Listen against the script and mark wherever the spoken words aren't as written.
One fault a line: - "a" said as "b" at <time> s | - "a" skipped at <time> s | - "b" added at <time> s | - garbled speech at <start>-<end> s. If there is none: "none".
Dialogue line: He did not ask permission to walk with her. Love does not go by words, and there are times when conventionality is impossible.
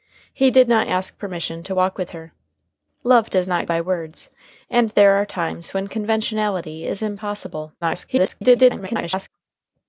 - "go" skipped at 3.7 s
- garbled speech at 7.8-9.3 s